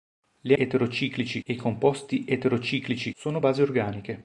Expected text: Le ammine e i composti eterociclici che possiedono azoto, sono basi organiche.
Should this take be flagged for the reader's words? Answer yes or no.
yes